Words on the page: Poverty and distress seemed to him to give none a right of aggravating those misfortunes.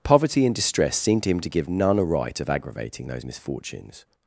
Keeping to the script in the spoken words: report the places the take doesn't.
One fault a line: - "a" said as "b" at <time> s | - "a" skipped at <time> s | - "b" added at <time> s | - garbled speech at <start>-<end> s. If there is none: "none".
none